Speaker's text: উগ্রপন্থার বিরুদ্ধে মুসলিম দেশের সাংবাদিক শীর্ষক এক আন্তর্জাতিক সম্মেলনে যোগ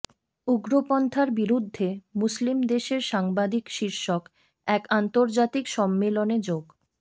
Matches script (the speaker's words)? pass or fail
pass